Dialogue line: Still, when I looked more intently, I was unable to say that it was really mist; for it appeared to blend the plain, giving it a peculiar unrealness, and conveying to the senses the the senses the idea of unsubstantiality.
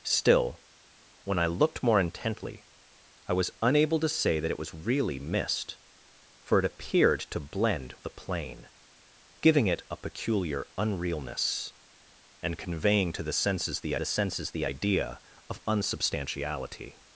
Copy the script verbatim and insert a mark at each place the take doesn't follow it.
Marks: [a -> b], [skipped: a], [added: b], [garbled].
Still, when I looked more intently, I was unable to say that it was really mist; for it appeared to blend the plain, giving it a peculiar unrealness, and conveying to the senses the the senses the idea of unsubstantiality.